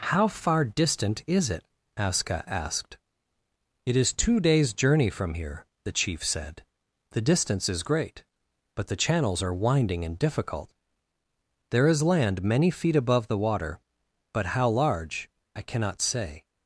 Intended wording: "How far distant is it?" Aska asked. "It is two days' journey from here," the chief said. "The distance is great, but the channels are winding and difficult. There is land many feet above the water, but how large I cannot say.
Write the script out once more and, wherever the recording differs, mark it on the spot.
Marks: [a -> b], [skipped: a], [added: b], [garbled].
"How far distant is it?" Aska asked. "It is two days' journey from here," the chief said. "The distance is great, but the channels are winding and difficult. There is land many feet above the water, but how large I cannot say.